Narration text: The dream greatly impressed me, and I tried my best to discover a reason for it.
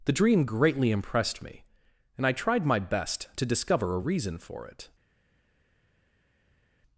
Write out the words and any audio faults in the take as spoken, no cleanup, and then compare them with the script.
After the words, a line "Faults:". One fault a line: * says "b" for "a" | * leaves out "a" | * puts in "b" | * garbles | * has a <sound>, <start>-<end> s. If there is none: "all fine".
The dream greatly impressed me, and I tried my best to discover a reason for it.
Faults:
all fine